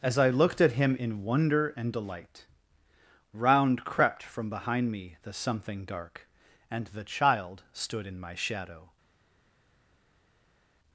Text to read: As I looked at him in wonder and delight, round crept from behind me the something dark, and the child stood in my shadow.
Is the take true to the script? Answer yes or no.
yes